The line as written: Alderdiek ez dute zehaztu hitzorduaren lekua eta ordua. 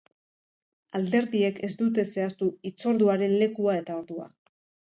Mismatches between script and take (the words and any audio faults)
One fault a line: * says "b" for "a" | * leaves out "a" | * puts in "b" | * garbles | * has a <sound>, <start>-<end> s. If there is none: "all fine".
all fine